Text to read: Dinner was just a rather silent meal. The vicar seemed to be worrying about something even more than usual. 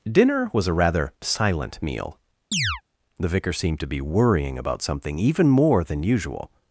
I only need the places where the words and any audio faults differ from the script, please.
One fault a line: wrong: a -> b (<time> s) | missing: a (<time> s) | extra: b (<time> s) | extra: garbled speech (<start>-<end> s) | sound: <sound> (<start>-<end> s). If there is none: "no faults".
missing: just (0.7 s)
sound: chirp (2.5-2.8 s)